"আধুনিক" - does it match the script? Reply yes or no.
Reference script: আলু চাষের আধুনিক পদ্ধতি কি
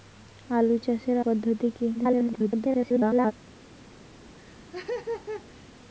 no